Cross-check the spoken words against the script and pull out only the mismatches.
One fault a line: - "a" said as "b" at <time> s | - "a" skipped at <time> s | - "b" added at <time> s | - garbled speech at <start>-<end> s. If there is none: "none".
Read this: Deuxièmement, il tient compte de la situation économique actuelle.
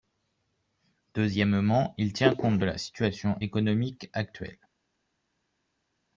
none